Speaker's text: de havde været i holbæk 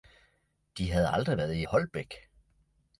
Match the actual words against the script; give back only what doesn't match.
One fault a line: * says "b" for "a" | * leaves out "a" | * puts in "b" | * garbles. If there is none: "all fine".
* puts in "aldrig"